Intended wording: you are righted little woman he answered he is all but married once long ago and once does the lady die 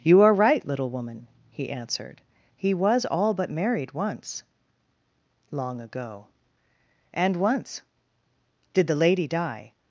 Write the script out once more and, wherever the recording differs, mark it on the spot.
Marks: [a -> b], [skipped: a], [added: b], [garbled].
you are [righted -> right] little woman he answered he [is -> was] all but married once long ago and once [does -> did] the lady die